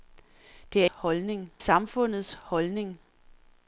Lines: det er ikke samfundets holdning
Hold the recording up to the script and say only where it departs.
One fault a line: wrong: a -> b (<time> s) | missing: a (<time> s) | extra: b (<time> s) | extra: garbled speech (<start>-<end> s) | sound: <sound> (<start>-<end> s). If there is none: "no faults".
wrong: ikke -> holdning (0.8 s)